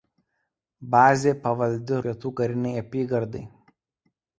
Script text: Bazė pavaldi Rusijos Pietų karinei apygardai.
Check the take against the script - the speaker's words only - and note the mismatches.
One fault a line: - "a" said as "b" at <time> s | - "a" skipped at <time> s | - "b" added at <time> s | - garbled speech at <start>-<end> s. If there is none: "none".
- "Rusijos" skipped at 2.0 s